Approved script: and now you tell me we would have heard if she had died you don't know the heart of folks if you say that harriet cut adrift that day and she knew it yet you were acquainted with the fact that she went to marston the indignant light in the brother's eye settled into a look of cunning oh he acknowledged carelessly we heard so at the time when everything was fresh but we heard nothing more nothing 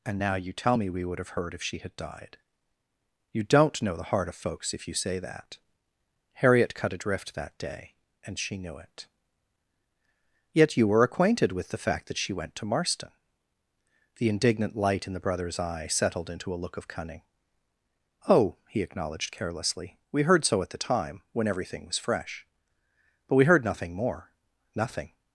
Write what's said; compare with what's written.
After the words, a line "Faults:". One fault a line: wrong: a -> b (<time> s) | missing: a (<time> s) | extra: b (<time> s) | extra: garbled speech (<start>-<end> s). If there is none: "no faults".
and now you tell me we would have heard if she had died you don't know the heart of folks if you say that harriet cut adrift that day and she knew it yet you were acquainted with the fact that she went to marston the indignant light in the brother's eye settled into a look of cunning oh he acknowledged carelessly we heard so at the time when everything was fresh but we heard nothing more nothing
Faults:
no faults